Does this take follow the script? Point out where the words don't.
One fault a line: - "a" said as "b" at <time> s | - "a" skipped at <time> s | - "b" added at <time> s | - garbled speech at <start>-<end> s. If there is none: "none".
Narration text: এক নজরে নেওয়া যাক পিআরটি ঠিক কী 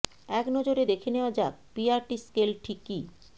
- "দেখে" added at 0.9 s
- "স্কেল" added at 2.2 s